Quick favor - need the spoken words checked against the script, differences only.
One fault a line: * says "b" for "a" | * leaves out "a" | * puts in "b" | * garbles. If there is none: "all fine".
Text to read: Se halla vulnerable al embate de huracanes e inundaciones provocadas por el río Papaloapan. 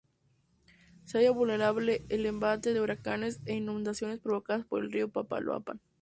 all fine